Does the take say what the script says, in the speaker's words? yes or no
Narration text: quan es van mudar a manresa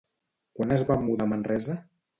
yes